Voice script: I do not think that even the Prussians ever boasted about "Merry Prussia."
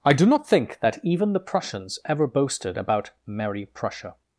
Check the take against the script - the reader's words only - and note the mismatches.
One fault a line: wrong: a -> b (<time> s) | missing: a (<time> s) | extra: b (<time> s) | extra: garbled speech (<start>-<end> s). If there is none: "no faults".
no faults